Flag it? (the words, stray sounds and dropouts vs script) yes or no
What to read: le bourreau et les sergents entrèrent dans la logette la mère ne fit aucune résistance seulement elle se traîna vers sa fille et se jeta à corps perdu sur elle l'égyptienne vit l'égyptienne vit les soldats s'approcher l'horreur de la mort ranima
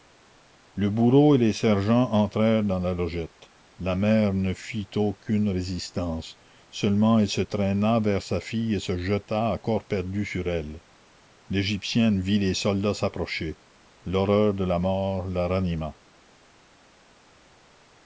yes